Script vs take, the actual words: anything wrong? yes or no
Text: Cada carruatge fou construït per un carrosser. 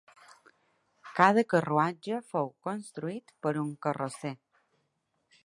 no